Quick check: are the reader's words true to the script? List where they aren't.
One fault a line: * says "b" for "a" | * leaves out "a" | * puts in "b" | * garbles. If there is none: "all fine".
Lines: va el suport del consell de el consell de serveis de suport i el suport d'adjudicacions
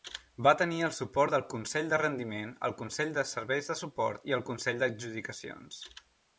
* puts in "tenir"
* puts in "rendiment"
* says "consell" for "suport"